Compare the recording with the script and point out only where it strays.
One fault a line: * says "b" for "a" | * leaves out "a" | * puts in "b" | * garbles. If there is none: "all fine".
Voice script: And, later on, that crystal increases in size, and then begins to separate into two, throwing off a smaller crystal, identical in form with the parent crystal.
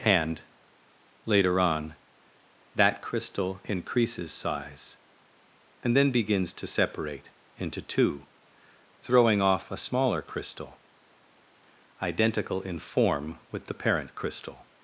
* leaves out "in"